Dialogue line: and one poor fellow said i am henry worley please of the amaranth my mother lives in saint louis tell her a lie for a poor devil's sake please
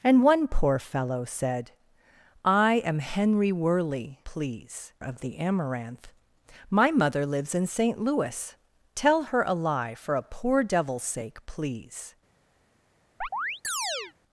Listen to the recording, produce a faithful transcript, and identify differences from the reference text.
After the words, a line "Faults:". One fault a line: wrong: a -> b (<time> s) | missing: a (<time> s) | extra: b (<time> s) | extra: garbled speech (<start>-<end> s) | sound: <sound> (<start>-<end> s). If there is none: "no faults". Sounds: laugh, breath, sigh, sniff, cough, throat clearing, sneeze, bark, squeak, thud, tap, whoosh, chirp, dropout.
and one poor fellow said i am henry worley please of the amaranth my mother lives in saint louis tell her a lie for a poor devil's sake please
Faults:
sound: chirp (13.2-14.1 s)